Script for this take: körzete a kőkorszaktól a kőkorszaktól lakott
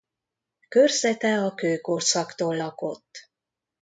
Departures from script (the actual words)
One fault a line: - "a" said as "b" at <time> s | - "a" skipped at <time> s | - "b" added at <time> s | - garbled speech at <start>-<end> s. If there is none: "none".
- "a kőkorszaktól" skipped at 2.6 s